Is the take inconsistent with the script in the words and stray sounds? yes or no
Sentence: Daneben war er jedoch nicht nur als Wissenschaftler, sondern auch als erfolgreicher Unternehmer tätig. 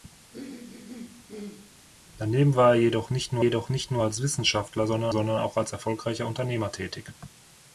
yes